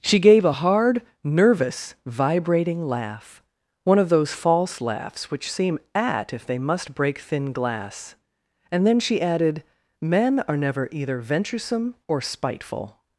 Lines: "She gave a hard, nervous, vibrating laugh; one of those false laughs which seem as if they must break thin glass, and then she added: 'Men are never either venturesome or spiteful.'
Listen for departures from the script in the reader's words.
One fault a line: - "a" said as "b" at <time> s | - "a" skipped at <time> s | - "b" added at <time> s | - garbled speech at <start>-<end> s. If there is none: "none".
- "as" said as "at" at 5.9 s